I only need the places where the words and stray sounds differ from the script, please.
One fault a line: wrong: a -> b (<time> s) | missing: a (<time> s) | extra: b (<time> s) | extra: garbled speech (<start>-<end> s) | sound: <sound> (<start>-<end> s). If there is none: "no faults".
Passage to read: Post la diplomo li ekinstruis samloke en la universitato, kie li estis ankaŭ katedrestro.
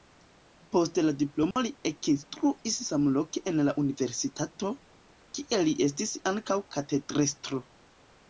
sound: dropout (1.5-1.6 s)